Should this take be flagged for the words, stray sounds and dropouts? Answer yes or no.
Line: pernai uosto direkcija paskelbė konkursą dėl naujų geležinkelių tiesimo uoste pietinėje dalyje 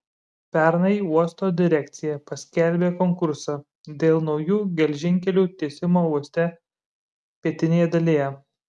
no